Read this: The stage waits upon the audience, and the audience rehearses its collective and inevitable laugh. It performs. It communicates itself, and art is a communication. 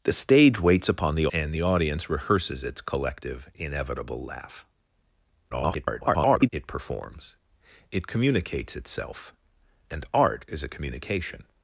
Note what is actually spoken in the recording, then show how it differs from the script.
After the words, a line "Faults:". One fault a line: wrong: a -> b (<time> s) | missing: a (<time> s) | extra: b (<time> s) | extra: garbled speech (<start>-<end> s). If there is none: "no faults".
The stage waits upon the and the audience rehearses its collective inevitable laugh. [garbled] It performs. It communicates itself, and art is a communication.
Faults:
missing: audience (1.3 s)
missing: and (3.5 s)
extra: garbled speech (5.5-6.5 s)